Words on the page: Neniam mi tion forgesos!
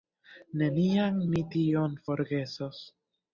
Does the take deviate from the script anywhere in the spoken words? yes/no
no